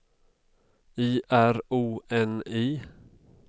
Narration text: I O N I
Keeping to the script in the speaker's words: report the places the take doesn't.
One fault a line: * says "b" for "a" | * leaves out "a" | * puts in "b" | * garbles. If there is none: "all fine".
* puts in "R"